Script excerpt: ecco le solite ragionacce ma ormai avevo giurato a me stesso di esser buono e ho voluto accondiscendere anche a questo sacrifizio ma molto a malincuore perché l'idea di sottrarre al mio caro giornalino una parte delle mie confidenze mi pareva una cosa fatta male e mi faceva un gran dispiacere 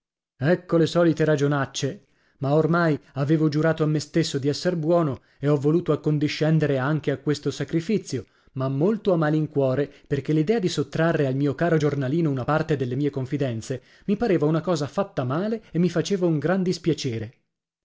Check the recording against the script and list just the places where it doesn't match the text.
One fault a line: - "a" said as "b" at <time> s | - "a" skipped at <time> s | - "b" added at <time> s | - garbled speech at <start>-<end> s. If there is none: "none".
none